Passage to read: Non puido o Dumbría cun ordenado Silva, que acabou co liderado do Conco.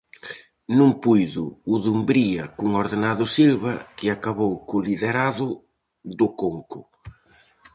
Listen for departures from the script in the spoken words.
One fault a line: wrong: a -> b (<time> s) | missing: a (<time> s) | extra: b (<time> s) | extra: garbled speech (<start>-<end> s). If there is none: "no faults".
no faults